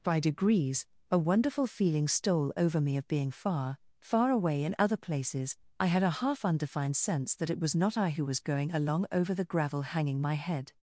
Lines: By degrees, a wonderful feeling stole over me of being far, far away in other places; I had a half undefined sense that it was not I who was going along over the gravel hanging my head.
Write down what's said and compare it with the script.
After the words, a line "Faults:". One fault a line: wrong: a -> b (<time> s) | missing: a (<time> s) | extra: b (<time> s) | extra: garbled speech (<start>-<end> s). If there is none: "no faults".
By degrees, a wonderful feeling stole over me of being far, far away in other places; I had a half undefined sense that it was not I who was going along over the gravel hanging my head.
Faults:
no faults